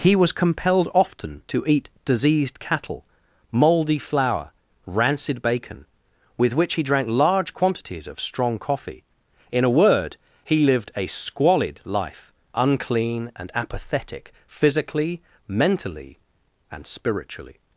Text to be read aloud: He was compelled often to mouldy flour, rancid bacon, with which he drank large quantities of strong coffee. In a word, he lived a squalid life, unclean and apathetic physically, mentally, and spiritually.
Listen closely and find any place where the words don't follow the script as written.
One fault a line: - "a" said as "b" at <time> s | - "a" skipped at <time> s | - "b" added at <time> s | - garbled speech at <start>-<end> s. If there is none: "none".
- "eat diseased cattle" added at 1.7 s